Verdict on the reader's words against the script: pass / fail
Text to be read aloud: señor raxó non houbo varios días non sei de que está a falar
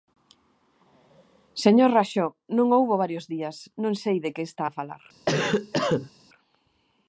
pass